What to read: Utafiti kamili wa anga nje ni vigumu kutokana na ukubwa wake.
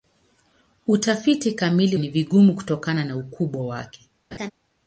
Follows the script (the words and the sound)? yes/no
no